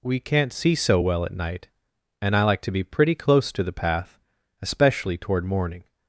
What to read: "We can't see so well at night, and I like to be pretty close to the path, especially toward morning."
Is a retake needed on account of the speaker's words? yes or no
no